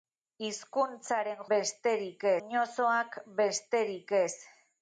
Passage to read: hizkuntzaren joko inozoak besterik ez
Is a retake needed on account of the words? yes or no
yes